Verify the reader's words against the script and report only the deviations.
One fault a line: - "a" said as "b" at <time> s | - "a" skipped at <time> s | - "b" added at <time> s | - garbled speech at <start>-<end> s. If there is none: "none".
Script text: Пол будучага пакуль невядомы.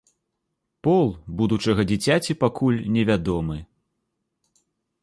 - "дзіцяці" added at 1.9 s